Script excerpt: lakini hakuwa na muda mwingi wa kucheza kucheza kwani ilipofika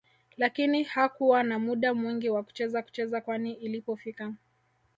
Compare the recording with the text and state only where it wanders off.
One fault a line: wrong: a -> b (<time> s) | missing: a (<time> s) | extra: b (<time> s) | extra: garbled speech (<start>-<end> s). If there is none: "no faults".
no faults